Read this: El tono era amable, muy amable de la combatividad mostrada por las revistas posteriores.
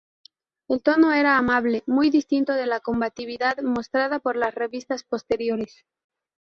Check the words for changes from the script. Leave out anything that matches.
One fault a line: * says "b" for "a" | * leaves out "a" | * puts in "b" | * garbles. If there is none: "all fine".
* says "distinto" for "amable"